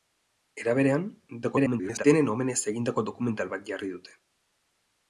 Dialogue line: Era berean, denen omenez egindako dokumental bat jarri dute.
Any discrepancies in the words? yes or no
yes